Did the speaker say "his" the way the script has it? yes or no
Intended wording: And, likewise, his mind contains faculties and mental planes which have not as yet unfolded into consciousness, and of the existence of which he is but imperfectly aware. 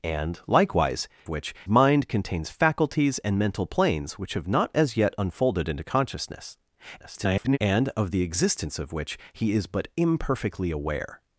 no